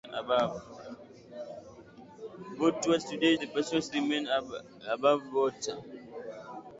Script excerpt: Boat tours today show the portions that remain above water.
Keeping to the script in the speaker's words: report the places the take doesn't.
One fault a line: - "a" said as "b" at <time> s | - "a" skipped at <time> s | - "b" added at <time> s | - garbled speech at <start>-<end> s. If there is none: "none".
- "show" skipped at 3.4 s
- "that" skipped at 3.9 s